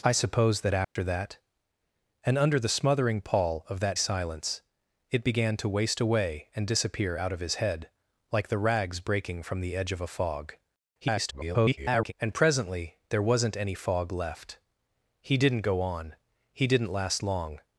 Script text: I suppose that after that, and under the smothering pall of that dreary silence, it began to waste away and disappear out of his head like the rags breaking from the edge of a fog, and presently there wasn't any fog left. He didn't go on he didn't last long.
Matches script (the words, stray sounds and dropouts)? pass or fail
fail